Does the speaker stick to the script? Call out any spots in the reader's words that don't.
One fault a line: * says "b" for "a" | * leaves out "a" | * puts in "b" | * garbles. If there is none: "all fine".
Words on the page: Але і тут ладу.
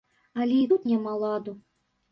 * puts in "няма"